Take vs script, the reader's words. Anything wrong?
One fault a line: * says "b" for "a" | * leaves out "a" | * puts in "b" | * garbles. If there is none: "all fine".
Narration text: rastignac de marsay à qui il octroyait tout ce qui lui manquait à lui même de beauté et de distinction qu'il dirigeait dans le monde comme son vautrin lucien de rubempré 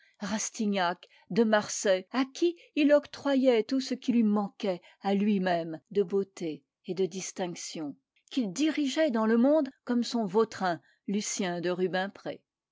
all fine